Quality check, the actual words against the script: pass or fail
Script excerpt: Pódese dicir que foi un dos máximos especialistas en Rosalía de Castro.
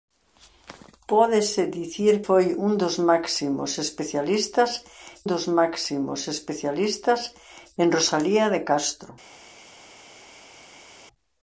fail